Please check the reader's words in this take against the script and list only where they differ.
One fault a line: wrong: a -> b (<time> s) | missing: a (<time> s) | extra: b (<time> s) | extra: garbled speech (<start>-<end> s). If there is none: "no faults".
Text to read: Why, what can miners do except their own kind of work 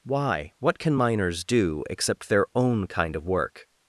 no faults